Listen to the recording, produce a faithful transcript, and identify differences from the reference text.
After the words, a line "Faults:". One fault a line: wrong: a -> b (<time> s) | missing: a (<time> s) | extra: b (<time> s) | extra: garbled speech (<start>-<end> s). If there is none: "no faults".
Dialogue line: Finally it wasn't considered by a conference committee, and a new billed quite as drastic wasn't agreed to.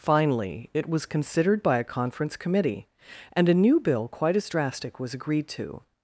Finally it was considered by a conference committee, and a new bill quite as drastic was agreed to.
Faults:
wrong: wasn't -> was (0.9 s)
wrong: billed -> bill (3.8 s)
wrong: wasn't -> was (5.0 s)